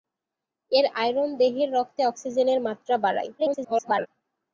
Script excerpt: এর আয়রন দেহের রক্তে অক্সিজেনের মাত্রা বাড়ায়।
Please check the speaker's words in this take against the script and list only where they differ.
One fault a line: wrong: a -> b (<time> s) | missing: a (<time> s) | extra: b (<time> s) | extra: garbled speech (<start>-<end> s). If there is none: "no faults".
extra: garbled speech (3.4-4.1 s)